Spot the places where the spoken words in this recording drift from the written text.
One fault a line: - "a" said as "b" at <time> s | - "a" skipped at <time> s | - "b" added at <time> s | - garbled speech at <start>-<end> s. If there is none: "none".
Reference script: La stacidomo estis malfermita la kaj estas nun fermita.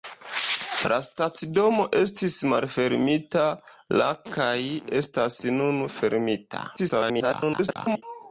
- garbled speech at 6.8-8.0 s